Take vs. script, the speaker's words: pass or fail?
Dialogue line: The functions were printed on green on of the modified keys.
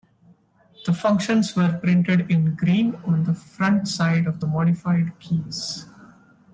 fail